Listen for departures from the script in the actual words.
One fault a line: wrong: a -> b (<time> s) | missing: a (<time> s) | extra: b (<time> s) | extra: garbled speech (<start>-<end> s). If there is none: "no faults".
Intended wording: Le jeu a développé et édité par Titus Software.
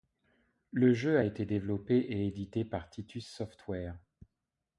extra: été (1.2 s)